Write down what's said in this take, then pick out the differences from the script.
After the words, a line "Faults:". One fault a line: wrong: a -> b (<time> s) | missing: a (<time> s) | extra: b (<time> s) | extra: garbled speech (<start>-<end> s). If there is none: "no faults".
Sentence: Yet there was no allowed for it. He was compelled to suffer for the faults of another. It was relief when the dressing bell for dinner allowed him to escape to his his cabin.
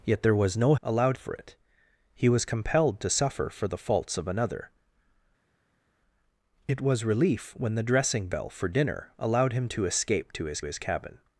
Yet there was no allowed for it. He was compelled to suffer for the faults of another. It was relief when the dressing bell for dinner allowed him to escape to his his cabin.
Faults:
no faults